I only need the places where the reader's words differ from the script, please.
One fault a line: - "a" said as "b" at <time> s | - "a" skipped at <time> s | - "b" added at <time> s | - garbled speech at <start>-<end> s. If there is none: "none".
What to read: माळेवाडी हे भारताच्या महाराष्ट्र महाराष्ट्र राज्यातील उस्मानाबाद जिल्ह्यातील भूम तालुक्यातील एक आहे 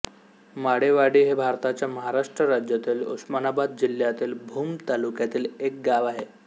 - "महाराष्ट्र" skipped at 2.4 s
- "गाव" added at 5.8 s